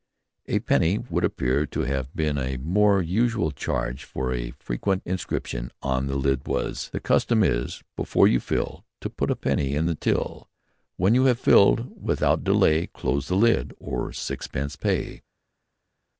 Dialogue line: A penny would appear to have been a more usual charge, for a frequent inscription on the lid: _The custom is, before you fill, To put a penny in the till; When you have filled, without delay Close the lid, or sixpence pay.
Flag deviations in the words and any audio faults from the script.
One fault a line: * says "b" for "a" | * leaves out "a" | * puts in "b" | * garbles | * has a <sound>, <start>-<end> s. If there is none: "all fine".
* puts in "was"